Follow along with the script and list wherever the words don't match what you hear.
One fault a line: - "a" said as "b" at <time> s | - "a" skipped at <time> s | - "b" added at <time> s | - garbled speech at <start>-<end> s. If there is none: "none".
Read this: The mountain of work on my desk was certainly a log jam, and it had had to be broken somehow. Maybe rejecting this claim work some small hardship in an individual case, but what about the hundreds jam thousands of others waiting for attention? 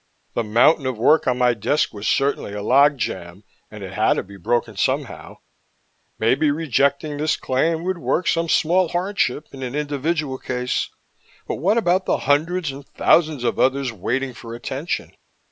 - "had" skipped at 4.2 s
- "would" added at 7.8 s
- "jam" said as "and" at 12.7 s